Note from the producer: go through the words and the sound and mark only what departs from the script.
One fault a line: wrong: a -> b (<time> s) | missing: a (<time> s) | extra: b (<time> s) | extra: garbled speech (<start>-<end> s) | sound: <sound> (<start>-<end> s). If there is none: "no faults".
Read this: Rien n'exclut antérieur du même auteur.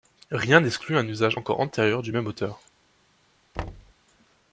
extra: un usage encore (1.0 s)
sound: thud (3.5-3.9 s)